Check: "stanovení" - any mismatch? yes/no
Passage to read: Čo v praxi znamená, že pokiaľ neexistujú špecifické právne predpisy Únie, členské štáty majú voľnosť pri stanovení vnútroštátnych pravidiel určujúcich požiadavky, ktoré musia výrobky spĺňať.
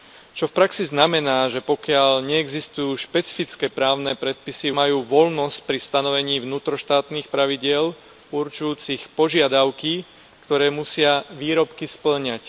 no